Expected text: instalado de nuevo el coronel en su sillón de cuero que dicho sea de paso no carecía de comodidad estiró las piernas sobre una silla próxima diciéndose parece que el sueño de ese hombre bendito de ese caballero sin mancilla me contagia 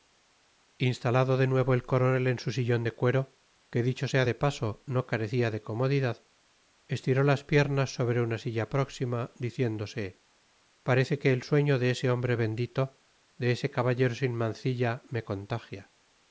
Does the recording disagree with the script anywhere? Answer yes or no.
no